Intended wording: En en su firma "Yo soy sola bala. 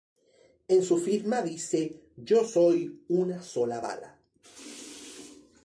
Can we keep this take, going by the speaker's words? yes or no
no